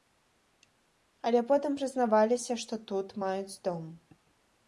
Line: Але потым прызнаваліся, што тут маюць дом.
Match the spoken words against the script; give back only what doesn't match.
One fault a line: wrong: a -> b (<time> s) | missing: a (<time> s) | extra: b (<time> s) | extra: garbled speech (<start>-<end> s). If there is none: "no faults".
no faults